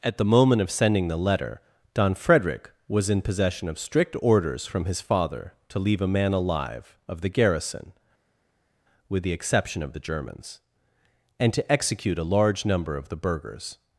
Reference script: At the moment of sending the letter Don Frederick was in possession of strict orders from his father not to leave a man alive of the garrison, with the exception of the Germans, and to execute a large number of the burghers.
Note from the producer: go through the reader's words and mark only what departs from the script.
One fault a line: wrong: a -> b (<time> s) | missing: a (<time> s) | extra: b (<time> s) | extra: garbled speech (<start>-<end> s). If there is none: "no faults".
missing: not (5.5 s)